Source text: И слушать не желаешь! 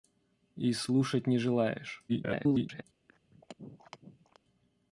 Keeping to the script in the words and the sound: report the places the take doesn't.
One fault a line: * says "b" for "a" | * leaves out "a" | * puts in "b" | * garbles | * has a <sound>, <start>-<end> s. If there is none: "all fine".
* garbles
* has a throat clearing, 3.1-4.4 s